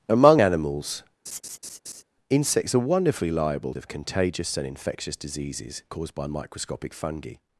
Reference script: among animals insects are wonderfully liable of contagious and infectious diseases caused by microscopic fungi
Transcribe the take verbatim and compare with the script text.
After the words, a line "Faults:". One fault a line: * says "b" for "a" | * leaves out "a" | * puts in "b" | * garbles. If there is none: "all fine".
among animals insects are wonderfully liable of contagious and infectious diseases caused by microscopic fungi
Faults:
all fine